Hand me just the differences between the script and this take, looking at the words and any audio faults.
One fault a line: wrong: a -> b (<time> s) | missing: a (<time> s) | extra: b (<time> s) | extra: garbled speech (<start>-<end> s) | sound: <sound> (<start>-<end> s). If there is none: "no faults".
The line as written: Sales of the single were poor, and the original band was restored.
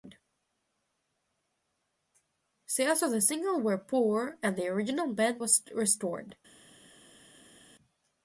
no faults